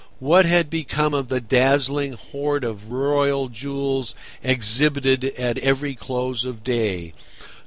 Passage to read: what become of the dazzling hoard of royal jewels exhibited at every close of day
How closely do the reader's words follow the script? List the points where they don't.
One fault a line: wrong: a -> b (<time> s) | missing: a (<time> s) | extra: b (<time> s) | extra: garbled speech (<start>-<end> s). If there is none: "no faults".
extra: had (0.5 s)